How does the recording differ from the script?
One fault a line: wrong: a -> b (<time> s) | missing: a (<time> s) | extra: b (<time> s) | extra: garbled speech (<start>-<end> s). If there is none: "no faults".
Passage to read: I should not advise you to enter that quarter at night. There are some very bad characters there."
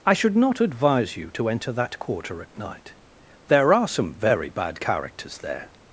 no faults